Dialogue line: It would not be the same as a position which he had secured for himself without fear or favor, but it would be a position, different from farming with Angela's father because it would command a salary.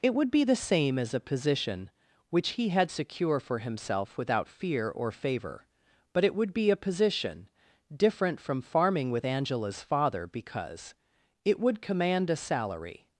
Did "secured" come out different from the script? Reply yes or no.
yes